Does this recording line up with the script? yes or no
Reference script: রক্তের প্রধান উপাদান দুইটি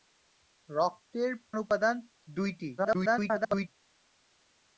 no